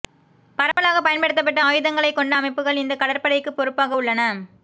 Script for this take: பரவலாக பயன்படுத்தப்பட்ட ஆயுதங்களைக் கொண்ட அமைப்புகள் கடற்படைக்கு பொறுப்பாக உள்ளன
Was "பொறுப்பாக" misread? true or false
false